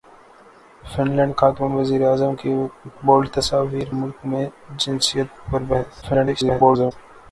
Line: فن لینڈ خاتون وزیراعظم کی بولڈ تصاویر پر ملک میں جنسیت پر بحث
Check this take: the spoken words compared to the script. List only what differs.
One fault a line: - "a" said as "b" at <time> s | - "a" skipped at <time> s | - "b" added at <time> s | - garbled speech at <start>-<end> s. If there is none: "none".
- "پر" skipped at 3.9 s
- garbled speech at 6.0-6.9 s